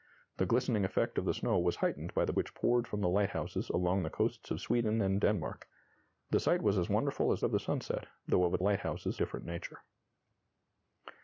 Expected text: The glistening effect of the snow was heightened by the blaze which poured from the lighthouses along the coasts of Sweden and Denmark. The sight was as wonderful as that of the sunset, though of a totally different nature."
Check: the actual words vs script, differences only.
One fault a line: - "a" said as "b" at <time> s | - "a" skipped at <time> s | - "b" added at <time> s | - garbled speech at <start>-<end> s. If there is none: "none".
- "blaze" skipped at 2.3 s
- "that" skipped at 7.4 s
- "totally" said as "lighthouses" at 8.6 s